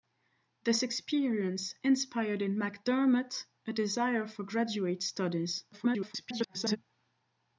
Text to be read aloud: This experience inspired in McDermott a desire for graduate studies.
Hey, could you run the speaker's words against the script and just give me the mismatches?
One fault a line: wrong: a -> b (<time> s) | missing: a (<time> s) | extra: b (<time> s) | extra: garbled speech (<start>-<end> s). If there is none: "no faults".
extra: garbled speech (5.7-6.8 s)